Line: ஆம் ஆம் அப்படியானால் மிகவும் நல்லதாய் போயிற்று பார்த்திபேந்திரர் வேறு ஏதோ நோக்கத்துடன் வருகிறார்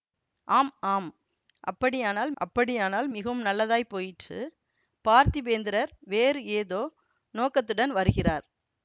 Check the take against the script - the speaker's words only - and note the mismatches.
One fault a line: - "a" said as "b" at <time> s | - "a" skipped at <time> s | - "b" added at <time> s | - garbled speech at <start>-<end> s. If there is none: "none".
- "அப்படியானால்" added at 2.4 s